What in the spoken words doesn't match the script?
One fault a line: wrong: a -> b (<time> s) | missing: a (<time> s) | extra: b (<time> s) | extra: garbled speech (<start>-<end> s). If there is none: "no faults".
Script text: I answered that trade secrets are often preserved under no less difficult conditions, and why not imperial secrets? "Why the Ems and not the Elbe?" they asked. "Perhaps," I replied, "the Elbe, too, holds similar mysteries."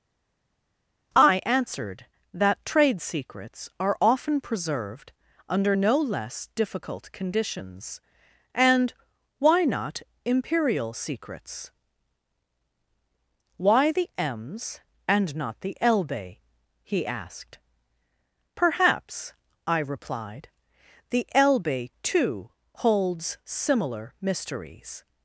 wrong: they -> he (16.8 s)